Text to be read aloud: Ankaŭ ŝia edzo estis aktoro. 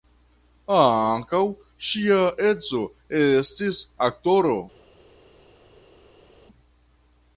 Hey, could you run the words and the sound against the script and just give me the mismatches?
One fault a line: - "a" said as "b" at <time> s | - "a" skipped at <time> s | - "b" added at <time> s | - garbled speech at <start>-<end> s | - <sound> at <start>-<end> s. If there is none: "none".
none